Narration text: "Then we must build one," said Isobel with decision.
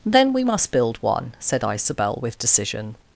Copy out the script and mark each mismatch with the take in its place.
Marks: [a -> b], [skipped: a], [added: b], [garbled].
"Then we must build one," said Isobel with decision.